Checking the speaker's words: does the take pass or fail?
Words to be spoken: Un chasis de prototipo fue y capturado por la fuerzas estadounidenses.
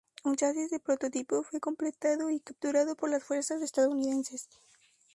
fail